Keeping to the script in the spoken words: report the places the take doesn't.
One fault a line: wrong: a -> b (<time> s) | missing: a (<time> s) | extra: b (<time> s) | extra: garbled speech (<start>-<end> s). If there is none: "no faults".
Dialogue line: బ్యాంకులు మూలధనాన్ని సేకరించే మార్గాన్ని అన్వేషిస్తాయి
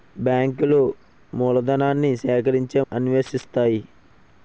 missing: మార్గాన్ని (2.8 s)